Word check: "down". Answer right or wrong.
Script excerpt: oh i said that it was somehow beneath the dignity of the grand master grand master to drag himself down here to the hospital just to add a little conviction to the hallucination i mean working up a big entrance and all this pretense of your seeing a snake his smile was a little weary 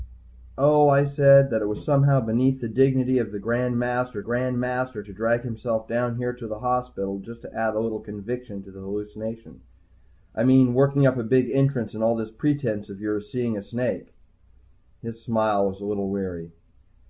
right